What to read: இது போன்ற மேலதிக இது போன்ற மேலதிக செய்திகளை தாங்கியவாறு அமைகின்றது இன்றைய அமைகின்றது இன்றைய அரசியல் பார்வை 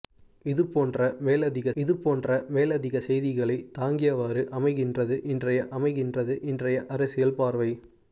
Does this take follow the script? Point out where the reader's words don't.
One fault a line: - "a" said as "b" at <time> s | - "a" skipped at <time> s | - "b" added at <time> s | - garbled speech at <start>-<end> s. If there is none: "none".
none